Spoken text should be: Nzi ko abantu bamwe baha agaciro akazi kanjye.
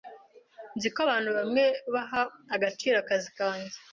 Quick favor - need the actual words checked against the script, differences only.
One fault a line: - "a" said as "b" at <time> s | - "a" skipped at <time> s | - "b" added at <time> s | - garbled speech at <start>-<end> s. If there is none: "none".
none